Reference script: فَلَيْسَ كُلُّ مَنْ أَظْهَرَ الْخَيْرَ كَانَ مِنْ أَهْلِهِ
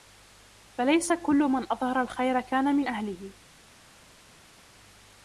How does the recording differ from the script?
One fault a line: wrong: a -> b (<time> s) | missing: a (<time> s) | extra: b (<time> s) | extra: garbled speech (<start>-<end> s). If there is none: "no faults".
no faults